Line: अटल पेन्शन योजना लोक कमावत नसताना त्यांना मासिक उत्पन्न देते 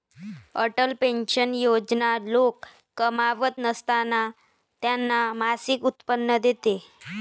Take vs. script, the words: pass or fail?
pass